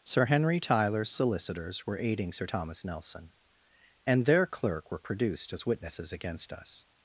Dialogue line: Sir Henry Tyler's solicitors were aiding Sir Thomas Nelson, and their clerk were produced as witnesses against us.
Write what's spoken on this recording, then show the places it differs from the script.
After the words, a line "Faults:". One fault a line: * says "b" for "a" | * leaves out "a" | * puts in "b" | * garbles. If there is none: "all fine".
Sir Henry Tyler's solicitors were aiding Sir Thomas Nelson, and their clerk were produced as witnesses against us.
Faults:
all fine